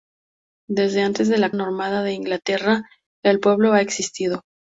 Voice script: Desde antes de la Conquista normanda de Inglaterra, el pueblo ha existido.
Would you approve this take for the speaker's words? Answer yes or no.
no